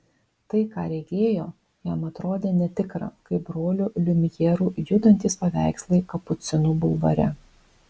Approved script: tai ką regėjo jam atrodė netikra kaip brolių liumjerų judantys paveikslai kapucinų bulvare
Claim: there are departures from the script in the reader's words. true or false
false